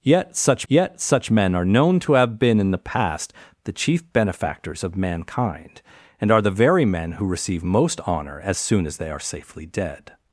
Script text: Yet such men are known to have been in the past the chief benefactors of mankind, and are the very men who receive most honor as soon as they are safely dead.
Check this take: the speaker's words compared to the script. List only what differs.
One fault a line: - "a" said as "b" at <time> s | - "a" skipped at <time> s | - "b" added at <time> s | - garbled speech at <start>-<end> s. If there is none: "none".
- "yet such" added at 0.7 s